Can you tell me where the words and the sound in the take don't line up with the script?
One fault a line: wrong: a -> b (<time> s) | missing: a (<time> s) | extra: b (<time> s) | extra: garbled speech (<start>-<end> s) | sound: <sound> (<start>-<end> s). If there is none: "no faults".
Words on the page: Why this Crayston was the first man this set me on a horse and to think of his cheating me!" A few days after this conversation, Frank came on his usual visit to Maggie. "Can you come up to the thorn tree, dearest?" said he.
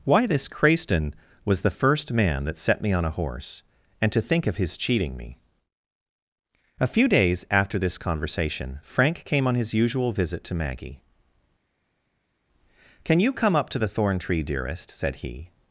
wrong: this -> that (2.5 s)